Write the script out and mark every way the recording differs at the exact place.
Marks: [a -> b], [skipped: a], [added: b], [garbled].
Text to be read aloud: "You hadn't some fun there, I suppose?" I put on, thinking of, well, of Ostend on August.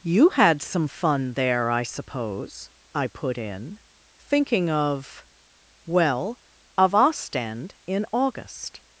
"You [hadn't -> had] some fun there, I suppose?" I put [on, -> in] thinking of, well, of Ostend [on -> in] August.